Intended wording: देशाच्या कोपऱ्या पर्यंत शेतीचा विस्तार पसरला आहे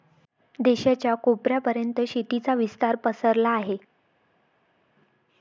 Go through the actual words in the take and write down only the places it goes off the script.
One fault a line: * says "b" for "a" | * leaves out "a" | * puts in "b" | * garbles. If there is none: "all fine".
all fine